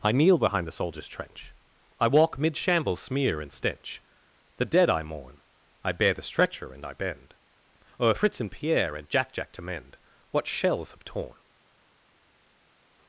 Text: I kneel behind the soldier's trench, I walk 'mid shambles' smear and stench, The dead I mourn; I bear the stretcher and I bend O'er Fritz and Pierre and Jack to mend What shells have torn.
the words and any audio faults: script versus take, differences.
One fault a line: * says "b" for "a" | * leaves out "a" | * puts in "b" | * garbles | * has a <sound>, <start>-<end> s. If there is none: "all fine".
* puts in "Jack"